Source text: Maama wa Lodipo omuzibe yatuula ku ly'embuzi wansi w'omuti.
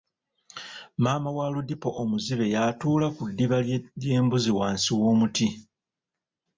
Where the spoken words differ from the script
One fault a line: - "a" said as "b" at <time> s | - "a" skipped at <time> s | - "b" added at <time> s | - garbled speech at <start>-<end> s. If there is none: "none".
- "ddiba" added at 3.3 s